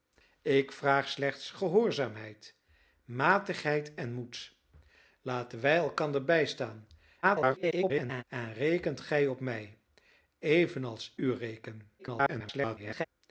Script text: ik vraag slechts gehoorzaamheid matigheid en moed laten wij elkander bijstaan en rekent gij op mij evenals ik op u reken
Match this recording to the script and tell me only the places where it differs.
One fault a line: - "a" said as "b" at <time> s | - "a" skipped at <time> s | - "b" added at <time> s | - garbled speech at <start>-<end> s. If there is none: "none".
- garbled speech at 7.2-8.2 s
- "ik op" skipped at 11.1 s
- garbled speech at 12.0-13.1 s